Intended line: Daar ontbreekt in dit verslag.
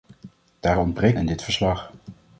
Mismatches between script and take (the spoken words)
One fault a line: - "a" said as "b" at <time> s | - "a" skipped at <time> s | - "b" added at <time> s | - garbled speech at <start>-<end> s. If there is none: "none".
none